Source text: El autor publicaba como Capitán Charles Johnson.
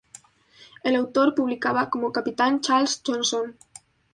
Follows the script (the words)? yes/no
yes